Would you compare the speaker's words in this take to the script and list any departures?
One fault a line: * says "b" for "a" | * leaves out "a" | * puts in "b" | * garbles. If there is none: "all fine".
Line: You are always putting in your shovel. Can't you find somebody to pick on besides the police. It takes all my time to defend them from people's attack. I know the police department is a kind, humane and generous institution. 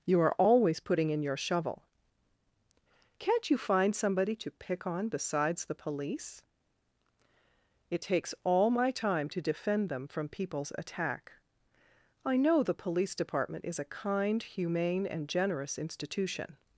all fine